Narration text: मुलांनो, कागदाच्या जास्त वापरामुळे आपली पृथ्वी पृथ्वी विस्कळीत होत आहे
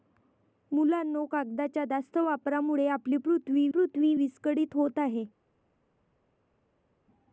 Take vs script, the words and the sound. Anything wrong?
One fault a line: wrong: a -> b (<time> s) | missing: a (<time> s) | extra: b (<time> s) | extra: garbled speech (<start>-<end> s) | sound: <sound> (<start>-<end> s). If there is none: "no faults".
no faults